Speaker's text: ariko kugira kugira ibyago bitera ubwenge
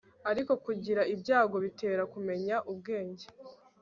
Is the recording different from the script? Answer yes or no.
yes